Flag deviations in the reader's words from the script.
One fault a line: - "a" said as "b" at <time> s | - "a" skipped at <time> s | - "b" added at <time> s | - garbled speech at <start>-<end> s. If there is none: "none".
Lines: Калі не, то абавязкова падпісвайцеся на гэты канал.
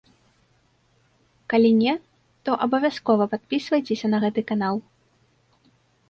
none